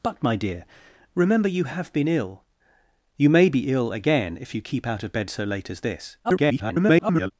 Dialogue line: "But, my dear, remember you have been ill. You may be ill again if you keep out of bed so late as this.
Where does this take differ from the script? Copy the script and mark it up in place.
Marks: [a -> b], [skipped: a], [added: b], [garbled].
"But, my dear, remember you have been ill. You may be ill again if you keep out of bed so late as this. [garbled]